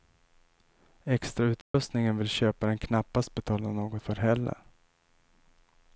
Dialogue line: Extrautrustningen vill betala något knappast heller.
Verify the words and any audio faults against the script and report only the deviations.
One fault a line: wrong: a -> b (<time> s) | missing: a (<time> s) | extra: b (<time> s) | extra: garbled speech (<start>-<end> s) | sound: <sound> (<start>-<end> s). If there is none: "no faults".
sound: dropout (1.6-1.7 s)
extra: köparen knappast (2.3 s)
wrong: knappast -> för (4.0 s)